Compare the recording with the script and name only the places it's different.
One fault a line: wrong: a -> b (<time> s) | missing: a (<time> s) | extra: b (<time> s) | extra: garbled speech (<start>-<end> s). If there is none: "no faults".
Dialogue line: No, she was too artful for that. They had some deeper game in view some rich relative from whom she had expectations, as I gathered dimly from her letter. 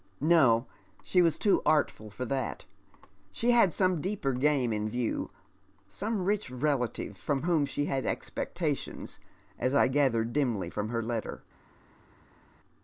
wrong: They -> She (3.3 s)